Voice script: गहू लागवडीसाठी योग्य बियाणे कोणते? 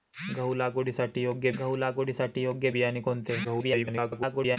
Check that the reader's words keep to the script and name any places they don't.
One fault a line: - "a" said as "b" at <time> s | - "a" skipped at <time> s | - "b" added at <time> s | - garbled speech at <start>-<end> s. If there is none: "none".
- "गहू लागवडीसाठी योग्य" added at 1.6 s
- garbled speech at 3.4-4.6 s